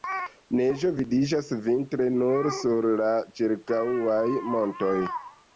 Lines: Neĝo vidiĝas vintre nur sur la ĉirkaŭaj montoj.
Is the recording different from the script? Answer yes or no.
no